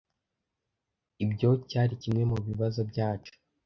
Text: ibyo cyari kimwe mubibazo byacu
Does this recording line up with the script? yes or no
yes